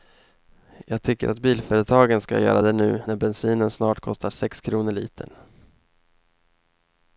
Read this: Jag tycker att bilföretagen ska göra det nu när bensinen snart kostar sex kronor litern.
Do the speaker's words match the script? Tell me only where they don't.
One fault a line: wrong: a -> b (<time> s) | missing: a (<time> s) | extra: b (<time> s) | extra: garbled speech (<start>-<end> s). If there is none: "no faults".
no faults